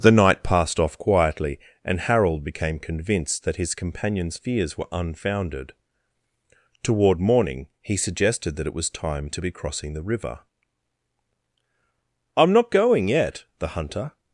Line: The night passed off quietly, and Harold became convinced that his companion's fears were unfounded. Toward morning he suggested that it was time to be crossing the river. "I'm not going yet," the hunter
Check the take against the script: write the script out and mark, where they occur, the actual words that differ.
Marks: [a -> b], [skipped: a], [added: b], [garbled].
The night passed off quietly, and Harold became convinced that his companion's fears were unfounded. Toward morning he suggested that it was time to be crossing the river. "I'm not going yet," the hunter